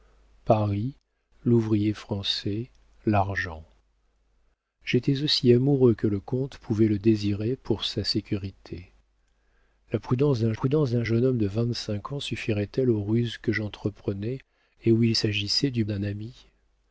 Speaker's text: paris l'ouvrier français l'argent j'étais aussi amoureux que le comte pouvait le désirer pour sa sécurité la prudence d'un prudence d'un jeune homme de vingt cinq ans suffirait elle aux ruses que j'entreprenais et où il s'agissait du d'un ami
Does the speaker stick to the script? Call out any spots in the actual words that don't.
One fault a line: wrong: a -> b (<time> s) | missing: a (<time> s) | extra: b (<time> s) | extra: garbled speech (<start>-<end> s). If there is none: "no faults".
no faults